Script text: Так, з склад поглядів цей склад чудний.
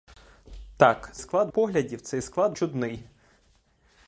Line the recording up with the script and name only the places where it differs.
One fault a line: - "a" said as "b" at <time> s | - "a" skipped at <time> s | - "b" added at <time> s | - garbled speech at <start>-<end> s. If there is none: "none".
none